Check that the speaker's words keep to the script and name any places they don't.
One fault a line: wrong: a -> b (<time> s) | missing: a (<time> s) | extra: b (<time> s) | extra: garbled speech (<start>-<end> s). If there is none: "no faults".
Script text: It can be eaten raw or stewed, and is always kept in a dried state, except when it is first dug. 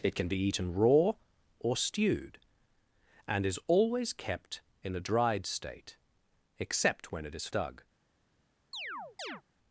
missing: first (7.5 s)